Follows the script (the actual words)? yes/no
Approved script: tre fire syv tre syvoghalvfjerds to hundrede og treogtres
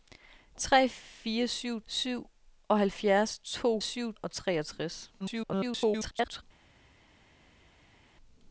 no